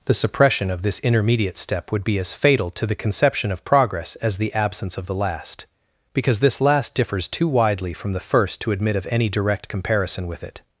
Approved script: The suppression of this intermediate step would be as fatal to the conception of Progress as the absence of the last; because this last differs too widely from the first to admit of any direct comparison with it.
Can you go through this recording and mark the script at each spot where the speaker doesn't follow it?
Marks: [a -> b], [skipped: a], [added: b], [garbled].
The suppression of this intermediate step would be as fatal to the conception of Progress as the absence of the last; because this last differs too widely from the first to admit of any direct comparison with it.